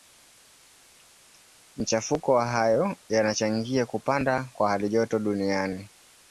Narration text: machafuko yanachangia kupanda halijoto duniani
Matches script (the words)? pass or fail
fail